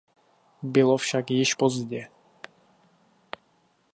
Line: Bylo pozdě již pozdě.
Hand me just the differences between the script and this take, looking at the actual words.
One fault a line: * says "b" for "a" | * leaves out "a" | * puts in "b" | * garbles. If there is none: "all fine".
* says "však" for "pozdě"